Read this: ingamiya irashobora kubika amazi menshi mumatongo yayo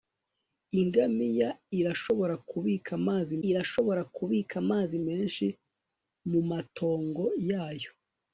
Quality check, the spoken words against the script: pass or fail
fail